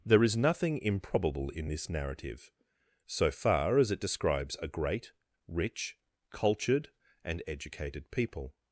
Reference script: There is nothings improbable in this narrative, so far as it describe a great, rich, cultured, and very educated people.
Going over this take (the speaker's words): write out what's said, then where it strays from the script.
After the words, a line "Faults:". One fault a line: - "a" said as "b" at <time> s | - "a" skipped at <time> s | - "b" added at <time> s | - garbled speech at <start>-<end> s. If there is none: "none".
There is nothing improbable in this narrative, so far as it describes a great, rich, cultured, and educated people.
Faults:
- "nothings" said as "nothing" at 0.3 s
- "describe" said as "describes" at 4.0 s
- "very" skipped at 7.4 s